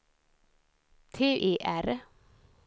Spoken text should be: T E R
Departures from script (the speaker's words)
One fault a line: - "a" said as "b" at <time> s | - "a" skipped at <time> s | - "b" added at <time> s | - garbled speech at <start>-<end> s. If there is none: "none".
none